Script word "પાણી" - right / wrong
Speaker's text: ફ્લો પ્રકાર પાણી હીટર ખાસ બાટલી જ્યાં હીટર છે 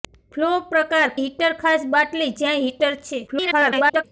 wrong